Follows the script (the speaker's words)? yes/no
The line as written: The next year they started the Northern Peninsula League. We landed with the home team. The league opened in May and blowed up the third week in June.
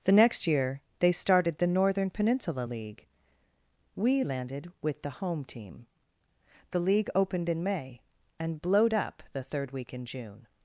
yes